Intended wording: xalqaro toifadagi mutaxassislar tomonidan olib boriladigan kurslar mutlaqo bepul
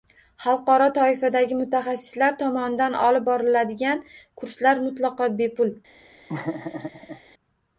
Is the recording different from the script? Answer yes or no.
no